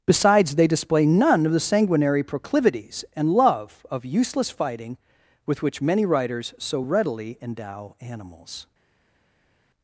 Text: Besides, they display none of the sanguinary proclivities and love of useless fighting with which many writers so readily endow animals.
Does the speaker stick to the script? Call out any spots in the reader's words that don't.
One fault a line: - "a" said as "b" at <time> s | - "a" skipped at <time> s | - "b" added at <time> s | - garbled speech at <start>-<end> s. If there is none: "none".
none